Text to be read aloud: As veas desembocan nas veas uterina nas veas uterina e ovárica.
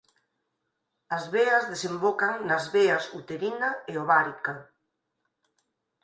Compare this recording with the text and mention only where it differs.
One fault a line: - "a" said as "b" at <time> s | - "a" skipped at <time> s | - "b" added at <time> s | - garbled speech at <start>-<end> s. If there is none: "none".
- "nas veas uterina" skipped at 3.7 s